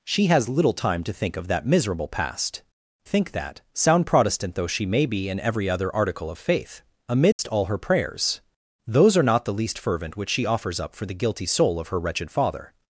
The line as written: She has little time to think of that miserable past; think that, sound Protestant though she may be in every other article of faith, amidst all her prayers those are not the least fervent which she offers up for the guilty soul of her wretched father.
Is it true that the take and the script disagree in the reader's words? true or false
false